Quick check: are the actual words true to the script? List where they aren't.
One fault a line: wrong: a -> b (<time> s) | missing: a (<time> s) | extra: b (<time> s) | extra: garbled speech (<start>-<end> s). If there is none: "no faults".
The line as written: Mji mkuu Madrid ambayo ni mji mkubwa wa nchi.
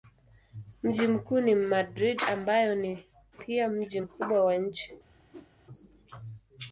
extra: ni (1.4 s)
extra: pia (3.4 s)